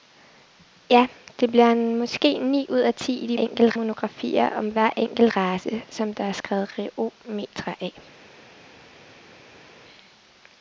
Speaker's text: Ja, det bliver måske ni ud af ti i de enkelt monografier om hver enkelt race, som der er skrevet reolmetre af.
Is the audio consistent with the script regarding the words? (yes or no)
yes